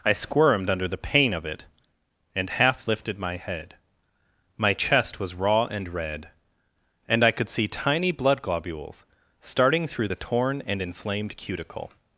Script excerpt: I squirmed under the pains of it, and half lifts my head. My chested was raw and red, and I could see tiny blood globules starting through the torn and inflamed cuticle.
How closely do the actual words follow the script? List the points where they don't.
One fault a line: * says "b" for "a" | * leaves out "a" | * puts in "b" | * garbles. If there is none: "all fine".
* says "pain" for "pains"
* says "lifted" for "lifts"
* says "chest" for "chested"